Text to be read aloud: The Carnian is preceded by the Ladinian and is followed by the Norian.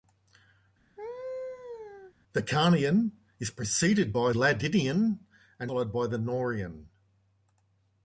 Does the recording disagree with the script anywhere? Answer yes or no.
yes